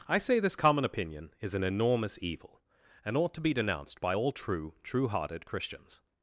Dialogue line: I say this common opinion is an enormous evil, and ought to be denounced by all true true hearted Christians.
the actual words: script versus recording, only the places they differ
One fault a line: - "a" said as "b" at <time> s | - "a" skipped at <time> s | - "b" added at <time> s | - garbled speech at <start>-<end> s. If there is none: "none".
none